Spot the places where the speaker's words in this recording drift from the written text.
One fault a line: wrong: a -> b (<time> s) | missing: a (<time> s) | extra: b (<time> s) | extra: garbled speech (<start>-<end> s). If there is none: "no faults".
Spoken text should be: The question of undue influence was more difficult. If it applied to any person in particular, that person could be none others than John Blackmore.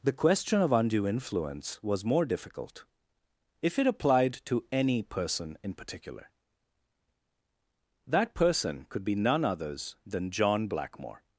no faults